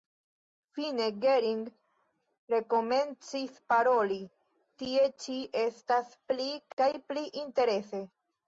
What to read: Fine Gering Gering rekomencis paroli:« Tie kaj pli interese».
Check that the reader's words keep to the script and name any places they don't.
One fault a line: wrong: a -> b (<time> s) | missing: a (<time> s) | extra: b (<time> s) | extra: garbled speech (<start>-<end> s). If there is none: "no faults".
missing: Gering (1.6 s)
extra: ĉi estas pli (5.3 s)